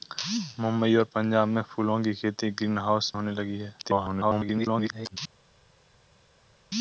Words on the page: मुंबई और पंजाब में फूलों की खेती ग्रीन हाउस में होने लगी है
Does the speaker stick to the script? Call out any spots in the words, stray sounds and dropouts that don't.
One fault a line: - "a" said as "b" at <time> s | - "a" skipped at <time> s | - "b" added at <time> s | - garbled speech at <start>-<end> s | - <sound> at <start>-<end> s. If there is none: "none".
- "में" skipped at 3.1 s
- garbled speech at 3.8-5.2 s